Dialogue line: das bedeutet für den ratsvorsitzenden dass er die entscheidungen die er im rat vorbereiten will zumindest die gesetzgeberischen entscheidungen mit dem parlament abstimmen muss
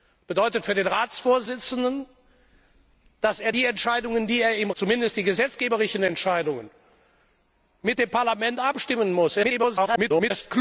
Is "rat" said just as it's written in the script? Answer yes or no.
no